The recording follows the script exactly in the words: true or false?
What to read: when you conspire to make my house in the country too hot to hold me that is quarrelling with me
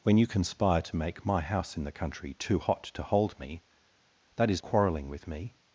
true